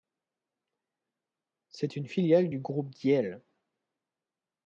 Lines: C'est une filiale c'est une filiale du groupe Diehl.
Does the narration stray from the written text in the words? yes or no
yes